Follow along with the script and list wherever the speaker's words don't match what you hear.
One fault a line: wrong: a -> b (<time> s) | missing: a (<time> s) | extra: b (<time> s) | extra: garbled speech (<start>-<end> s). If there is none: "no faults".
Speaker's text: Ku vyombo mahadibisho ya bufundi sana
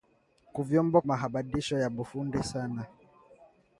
no faults